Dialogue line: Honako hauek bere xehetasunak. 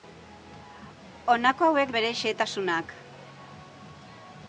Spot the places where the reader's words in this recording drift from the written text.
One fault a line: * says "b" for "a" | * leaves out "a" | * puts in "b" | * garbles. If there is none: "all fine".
all fine